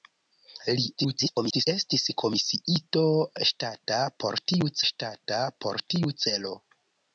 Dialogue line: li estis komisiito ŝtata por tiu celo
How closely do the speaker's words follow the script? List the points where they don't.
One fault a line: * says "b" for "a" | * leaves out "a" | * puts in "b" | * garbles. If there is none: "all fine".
* garbles
* puts in "ŝtata por tiu"